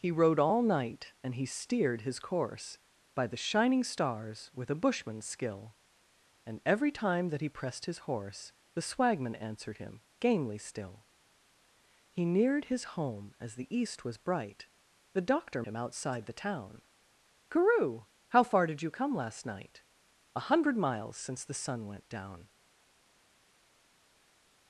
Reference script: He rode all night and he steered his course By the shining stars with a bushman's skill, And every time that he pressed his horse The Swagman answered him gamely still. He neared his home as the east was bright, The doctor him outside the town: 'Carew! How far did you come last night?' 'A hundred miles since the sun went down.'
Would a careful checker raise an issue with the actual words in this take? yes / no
no